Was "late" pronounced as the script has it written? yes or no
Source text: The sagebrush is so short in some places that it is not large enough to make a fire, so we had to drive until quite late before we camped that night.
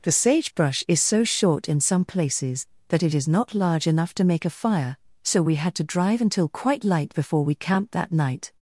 no